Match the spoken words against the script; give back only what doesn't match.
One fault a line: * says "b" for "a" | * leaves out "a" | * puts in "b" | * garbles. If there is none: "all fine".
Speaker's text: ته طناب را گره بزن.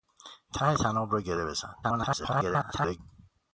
* garbles